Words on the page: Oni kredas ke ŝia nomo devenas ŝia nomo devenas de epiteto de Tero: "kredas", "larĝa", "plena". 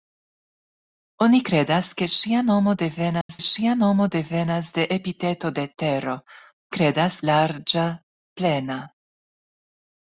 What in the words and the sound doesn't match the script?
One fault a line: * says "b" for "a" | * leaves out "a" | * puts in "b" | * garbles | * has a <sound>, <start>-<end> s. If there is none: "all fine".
* has a dropout, 3.2-3.3 s